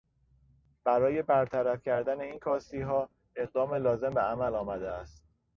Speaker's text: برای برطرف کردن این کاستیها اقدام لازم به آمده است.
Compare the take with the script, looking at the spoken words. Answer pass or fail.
fail